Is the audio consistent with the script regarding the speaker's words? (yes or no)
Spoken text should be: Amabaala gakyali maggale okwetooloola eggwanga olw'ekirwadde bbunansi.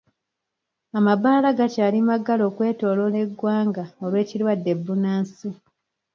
yes